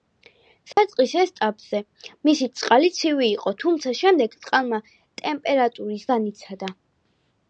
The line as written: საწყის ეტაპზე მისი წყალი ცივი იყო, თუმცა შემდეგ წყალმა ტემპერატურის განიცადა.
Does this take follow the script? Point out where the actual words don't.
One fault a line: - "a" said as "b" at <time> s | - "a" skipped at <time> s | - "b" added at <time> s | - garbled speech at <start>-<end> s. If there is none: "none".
none